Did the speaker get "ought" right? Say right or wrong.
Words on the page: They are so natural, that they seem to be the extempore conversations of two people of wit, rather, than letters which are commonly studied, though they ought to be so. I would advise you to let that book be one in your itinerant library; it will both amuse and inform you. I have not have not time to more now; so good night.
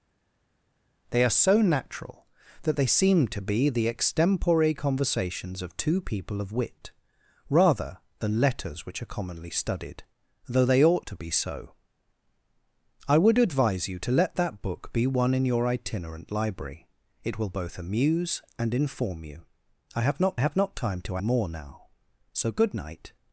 right